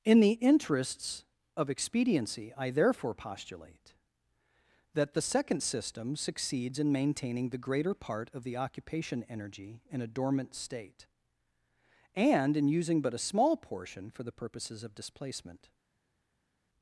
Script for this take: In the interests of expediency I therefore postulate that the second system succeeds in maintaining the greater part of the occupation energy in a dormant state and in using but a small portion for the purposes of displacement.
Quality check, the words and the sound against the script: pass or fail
pass